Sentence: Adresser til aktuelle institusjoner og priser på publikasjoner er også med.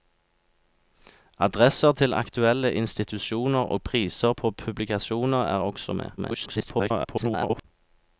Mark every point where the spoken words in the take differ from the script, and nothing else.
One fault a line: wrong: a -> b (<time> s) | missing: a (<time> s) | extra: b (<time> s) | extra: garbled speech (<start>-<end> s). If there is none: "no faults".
extra: garbled speech (6.2-7.6 s)